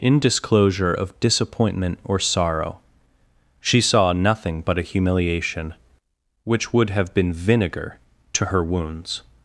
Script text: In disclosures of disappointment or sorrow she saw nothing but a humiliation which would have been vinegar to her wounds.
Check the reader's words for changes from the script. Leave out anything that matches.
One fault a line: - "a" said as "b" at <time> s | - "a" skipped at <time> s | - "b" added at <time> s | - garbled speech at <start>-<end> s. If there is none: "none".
- "disclosures" said as "disclosure" at 0.2 s